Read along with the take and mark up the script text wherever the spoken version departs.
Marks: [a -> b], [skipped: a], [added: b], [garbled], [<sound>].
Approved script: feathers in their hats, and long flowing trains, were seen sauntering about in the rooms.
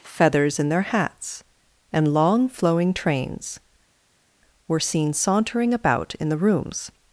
feathers in their hats, and long flowing trains, were seen sauntering about in the rooms.